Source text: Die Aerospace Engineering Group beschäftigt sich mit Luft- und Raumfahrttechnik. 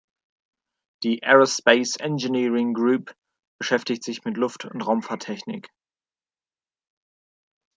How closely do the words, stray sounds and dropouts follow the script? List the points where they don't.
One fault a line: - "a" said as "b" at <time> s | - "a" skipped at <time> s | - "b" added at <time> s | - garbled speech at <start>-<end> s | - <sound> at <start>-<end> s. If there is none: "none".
none